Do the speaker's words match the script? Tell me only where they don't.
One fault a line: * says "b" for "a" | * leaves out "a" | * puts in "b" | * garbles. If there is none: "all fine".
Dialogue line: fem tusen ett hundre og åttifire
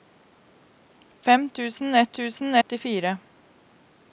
* says "tusen" for "hundre"